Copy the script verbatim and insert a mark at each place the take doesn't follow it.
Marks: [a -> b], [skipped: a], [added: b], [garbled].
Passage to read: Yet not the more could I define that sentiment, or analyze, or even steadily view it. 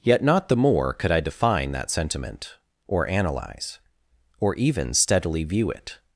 Yet not the more could I define that sentiment, or analyze, or even steadily view it.